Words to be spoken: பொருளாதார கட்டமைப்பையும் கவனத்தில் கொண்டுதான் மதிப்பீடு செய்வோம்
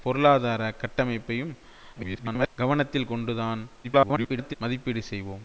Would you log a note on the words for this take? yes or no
yes